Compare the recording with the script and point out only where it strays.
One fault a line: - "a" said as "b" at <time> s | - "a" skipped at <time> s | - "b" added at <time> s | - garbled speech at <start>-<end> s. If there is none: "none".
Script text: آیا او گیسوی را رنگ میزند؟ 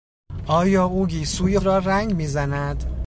none